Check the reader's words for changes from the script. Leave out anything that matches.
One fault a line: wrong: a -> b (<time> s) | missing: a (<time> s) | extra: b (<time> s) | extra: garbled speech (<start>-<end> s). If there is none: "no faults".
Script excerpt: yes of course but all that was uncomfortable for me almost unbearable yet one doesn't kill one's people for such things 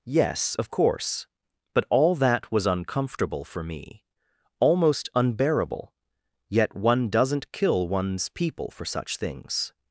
no faults